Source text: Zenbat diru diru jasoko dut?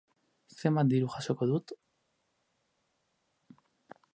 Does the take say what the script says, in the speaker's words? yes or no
no